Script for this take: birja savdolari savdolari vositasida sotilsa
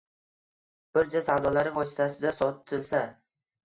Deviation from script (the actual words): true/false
true